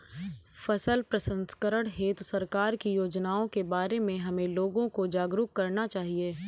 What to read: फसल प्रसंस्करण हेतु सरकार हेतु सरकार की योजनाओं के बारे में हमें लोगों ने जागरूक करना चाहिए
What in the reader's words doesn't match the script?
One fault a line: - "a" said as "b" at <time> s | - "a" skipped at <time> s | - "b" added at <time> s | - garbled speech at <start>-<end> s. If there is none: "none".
- "हेतु सरकार" skipped at 2.8 s
- "ने" said as "को" at 4.9 s